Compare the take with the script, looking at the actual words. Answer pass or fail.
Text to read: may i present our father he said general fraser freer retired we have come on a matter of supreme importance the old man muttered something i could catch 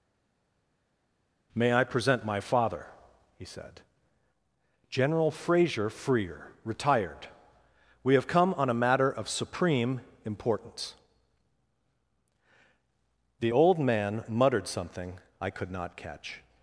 fail